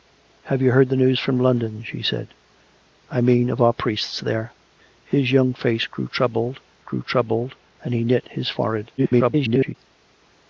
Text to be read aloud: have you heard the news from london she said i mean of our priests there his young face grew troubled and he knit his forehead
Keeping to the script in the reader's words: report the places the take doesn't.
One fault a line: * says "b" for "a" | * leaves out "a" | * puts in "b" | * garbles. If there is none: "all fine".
* puts in "grew troubled"
* garbles